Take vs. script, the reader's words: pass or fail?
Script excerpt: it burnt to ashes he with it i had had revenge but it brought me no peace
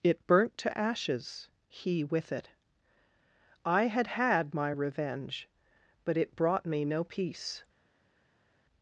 fail